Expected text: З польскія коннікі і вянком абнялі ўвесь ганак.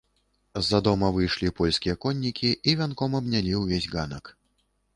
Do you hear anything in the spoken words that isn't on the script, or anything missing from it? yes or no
yes